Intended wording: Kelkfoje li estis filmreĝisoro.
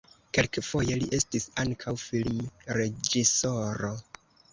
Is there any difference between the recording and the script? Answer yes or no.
yes